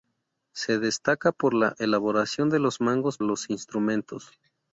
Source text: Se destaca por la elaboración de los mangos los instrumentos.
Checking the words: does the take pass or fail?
pass